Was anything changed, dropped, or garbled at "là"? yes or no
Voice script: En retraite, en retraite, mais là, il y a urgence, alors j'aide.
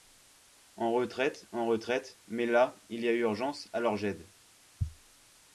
no